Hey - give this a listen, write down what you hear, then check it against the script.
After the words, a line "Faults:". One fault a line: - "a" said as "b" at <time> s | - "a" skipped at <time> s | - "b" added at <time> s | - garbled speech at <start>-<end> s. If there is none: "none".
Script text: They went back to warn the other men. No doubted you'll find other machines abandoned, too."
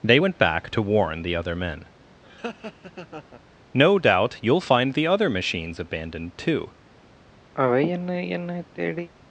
They went back to warn the other men. No doubt you'll find the other machines abandoned, too."
Faults:
- "doubted" said as "doubt" at 4.0 s
- "the" added at 4.9 s